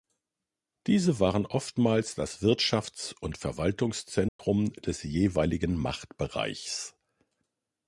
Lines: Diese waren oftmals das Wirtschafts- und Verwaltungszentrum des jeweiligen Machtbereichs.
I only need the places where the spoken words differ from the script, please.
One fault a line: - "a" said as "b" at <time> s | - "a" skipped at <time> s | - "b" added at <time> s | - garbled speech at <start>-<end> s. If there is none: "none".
none